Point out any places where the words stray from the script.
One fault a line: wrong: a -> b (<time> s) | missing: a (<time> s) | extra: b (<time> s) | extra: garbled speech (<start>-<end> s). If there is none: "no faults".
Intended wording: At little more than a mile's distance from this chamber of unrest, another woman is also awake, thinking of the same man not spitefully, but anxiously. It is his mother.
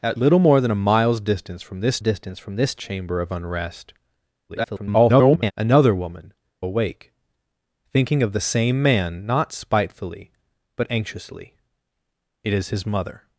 extra: distance from this (2.0 s)
extra: garbled speech (4.5-5.5 s)
missing: is also (6.3 s)